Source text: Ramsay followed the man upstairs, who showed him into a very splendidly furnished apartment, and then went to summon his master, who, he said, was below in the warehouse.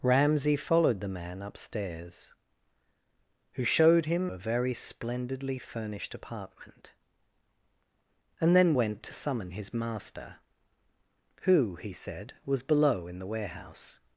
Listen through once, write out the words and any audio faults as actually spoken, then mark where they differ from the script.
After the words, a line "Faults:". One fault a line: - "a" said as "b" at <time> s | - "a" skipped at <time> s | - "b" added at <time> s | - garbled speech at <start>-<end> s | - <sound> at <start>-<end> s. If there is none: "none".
Ramsay followed the man upstairs, who showed him a very splendidly furnished apartment, and then went to summon his master, who, he said, was below in the warehouse.
Faults:
- "into" skipped at 4.3 s